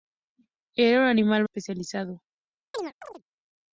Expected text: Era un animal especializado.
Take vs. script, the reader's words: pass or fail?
pass